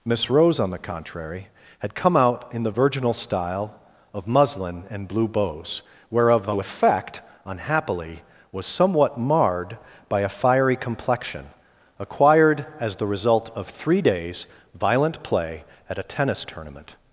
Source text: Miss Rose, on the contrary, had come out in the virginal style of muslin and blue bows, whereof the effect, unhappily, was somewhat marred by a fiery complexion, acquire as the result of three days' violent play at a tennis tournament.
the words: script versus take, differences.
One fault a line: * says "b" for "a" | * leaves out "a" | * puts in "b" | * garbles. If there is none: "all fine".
* says "acquired" for "acquire"